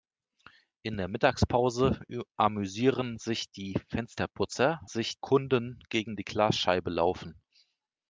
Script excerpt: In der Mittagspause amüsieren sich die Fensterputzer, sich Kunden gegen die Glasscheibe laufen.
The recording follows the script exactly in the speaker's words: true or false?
true